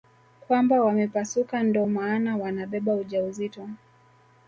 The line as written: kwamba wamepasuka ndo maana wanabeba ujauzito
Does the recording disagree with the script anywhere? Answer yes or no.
no